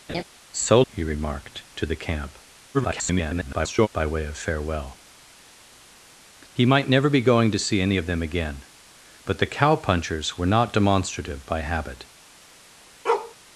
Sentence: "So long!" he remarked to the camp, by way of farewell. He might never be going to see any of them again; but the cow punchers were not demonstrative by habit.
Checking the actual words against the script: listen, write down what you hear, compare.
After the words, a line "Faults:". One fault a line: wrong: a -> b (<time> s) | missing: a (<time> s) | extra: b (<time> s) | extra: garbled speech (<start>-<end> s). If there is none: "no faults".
"So!" he remarked to the camp, [garbled] by way of farewell. He might never be going to see any of them again; but the cow punchers were not demonstrative by habit.
Faults:
missing: long (0.8 s)
extra: garbled speech (2.7-3.9 s)